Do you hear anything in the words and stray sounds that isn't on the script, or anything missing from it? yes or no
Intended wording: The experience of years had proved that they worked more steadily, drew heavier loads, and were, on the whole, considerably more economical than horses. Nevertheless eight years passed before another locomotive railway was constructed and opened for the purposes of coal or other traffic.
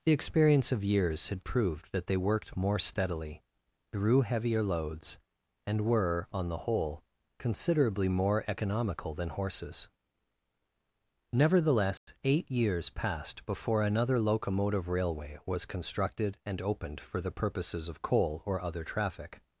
yes